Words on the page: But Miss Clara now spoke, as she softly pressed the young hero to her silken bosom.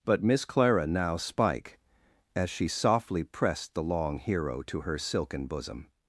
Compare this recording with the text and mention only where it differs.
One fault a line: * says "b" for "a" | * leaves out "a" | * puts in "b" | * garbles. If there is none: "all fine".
* says "spike" for "spoke"
* says "long" for "young"